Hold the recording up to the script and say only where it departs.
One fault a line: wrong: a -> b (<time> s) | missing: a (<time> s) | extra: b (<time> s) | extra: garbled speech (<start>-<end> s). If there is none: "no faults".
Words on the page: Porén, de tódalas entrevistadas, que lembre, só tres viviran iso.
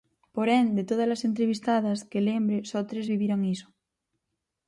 no faults